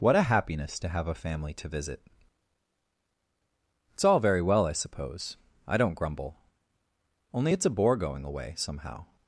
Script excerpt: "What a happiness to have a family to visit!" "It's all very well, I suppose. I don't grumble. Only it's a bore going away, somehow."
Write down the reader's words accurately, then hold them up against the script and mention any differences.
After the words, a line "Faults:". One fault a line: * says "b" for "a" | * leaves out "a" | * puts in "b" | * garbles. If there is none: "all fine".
"What a happiness to have a family to visit!" "It's all very well, I suppose. I don't grumble. Only it's a bore going away, somehow."
Faults:
all fine